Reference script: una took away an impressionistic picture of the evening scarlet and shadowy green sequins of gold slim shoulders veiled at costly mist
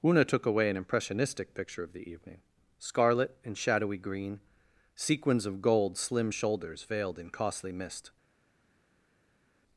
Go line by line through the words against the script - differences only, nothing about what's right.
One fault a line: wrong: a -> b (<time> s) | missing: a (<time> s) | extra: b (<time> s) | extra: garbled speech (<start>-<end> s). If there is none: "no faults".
wrong: at -> in (7.2 s)